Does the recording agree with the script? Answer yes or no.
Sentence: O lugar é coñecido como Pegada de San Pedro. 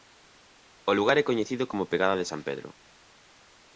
yes